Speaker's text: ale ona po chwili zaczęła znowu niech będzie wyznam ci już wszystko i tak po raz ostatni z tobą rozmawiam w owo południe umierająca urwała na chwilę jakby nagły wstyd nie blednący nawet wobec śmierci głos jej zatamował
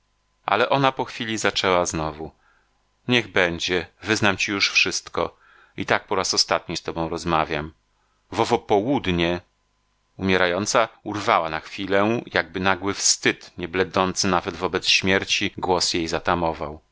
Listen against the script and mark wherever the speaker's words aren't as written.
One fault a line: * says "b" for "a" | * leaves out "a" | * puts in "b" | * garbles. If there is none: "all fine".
all fine